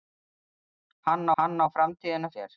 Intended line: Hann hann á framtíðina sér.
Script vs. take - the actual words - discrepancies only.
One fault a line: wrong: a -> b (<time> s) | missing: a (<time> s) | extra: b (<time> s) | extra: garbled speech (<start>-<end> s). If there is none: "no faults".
no faults